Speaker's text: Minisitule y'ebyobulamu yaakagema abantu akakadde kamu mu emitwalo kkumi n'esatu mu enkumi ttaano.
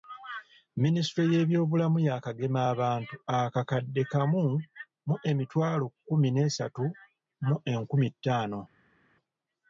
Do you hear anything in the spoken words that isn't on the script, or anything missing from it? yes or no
no